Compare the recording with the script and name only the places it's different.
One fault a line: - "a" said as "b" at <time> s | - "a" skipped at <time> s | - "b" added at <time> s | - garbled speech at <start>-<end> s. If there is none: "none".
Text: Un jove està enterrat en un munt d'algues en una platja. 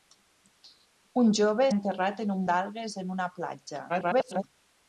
- "està" skipped at 1.7 s
- "munt" skipped at 2.4 s
- garbled speech at 3.9-4.4 s